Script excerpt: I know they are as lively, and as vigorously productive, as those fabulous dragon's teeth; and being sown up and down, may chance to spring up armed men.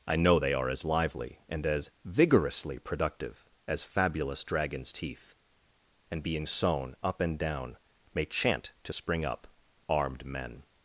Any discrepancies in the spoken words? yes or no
yes